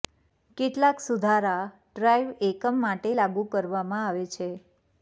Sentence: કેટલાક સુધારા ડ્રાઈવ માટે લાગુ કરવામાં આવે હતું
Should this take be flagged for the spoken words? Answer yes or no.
yes